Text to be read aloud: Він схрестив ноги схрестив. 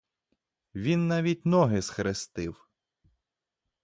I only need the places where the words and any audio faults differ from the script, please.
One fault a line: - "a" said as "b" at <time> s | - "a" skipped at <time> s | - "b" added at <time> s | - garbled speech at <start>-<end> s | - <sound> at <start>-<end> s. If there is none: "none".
- "схрестив" said as "навіть" at 1.1 s